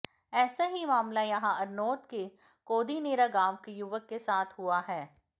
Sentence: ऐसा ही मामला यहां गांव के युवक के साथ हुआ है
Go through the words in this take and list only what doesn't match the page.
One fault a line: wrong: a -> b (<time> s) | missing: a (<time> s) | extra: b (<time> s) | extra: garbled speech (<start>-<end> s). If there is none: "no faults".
extra: अरनोद के कोदिनेरा (1.6 s)